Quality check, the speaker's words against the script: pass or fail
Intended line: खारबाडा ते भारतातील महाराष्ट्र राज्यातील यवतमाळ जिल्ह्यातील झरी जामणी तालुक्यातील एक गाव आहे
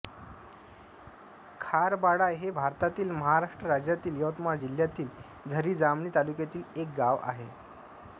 fail